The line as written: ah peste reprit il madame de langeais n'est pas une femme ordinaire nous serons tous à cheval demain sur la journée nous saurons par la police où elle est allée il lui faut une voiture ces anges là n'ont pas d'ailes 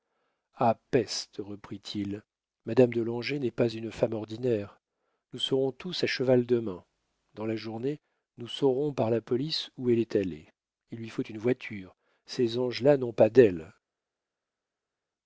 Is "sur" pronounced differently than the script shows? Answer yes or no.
yes